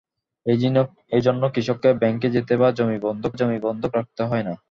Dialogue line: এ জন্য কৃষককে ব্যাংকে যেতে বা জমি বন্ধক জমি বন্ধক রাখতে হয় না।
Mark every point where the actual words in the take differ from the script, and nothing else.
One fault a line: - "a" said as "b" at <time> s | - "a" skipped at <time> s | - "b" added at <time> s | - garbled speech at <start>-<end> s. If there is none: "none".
none